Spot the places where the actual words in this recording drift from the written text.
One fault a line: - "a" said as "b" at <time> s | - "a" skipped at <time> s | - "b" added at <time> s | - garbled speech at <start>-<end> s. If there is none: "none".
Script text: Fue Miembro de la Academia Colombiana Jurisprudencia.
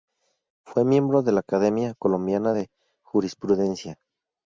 - "de" added at 2.5 s